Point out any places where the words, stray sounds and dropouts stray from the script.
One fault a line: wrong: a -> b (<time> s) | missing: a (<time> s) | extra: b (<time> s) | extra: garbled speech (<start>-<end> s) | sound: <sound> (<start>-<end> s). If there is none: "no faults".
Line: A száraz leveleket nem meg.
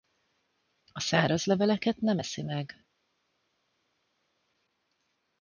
extra: eszi (2.2 s)